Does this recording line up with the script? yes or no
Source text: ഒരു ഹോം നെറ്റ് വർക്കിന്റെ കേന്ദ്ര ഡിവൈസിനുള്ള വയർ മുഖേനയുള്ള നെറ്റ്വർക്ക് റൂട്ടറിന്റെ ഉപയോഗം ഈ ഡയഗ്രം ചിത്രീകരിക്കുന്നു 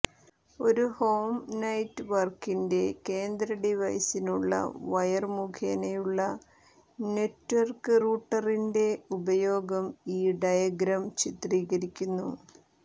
yes